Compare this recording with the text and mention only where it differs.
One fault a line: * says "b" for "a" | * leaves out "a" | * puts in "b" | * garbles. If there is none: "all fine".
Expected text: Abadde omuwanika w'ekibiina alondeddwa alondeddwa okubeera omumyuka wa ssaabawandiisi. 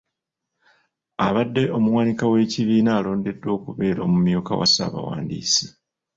* leaves out "alondeddwa"